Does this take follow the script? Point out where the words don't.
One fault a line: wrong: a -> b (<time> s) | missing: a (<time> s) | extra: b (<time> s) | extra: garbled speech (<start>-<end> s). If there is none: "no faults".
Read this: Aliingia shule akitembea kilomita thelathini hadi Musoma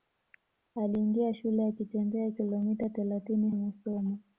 missing: hadi (3.5 s)